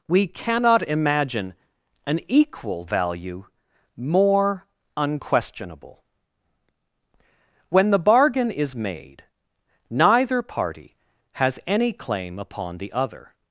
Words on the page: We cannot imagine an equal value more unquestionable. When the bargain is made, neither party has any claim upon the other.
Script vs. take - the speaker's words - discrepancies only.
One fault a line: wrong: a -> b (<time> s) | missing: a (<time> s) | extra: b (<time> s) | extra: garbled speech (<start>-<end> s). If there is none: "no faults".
no faults